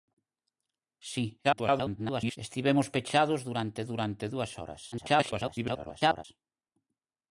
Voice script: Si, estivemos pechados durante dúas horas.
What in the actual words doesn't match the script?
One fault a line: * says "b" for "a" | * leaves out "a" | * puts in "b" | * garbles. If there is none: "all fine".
* garbles
* puts in "durante"
* garbles